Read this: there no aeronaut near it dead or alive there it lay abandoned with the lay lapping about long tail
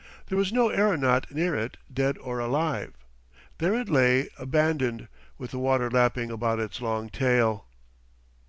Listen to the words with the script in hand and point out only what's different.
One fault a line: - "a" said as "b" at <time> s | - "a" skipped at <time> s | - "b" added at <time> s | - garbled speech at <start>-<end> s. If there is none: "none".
- "was" added at 0.4 s
- "lay" said as "water" at 5.6 s
- "its" added at 6.6 s